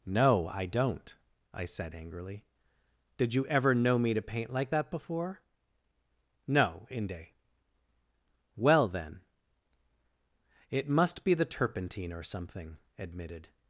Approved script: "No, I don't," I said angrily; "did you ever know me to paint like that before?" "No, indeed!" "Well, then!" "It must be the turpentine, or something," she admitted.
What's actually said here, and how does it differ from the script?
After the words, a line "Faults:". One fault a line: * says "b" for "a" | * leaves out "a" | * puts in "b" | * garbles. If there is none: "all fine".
"No, I don't," I said angrily; "did you ever know me to paint like that before?" "No, inde!" "Well, then!" "It must be the turpentine, or something," admitted.
Faults:
* says "inde" for "indeed"
* leaves out "she"